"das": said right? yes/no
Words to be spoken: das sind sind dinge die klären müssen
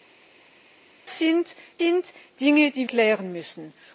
yes